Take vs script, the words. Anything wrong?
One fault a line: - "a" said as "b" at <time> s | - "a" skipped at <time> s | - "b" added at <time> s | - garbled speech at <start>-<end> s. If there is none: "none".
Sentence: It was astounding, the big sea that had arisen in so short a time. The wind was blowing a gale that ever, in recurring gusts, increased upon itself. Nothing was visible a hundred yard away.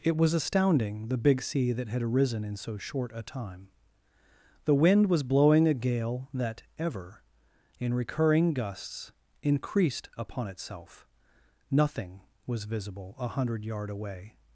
none